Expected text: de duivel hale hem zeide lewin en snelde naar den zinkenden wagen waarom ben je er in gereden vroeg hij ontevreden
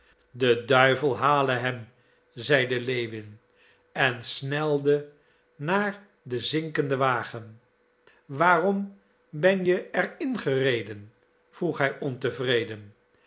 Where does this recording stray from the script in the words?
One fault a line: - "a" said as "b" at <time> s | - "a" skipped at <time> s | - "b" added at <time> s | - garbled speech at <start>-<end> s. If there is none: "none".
none